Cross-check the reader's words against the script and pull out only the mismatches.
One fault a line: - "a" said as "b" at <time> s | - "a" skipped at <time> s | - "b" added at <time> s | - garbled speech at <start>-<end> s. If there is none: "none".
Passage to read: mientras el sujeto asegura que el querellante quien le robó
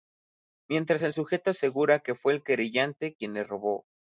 - "fue" added at 2.1 s